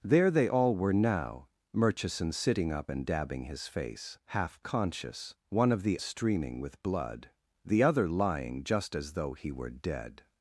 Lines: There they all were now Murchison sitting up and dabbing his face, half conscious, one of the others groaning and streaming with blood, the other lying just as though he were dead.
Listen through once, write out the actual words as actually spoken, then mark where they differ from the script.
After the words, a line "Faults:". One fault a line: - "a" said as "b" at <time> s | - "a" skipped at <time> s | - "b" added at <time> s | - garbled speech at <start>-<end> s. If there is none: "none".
There they all were now Murchison sitting up and dabbing his face, half conscious, one of the streaming with blood, the other lying just as though he were dead.
Faults:
- "others groaning and" skipped at 6.0 s